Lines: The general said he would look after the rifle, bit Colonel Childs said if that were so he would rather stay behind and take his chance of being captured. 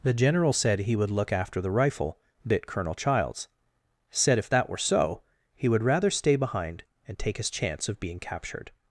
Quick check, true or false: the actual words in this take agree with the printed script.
true